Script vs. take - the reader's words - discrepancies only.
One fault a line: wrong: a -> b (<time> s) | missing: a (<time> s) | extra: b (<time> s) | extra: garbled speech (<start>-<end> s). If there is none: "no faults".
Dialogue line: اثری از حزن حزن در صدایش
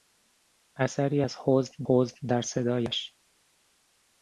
no faults